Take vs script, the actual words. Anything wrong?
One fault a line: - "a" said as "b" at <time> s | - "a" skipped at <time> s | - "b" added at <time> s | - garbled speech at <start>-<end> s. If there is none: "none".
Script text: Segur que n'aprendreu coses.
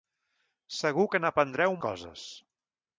none